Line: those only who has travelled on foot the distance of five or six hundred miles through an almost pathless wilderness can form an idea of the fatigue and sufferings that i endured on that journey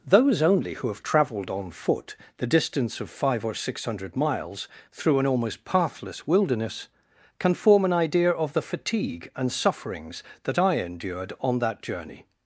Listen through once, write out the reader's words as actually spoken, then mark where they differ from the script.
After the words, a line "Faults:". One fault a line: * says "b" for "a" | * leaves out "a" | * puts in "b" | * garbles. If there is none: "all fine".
those only who have travelled on foot the distance of five or six hundred miles through an almost pathless wilderness can form an idea of the fatigue and sufferings that i endured on that journey
Faults:
* says "have" for "has"